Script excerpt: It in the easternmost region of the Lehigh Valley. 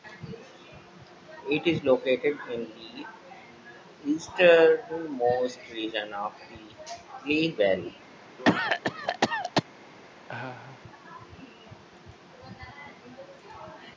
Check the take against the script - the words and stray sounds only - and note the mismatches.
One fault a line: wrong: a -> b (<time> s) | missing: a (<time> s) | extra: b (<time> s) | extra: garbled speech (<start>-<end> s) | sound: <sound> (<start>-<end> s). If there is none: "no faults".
extra: is located (1.7 s)
sound: cough (8.4-9.6 s)
sound: laugh (10.3-10.8 s)